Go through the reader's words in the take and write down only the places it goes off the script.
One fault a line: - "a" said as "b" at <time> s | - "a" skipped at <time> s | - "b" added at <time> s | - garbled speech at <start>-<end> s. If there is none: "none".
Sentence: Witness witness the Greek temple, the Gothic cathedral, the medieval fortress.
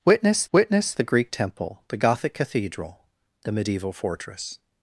none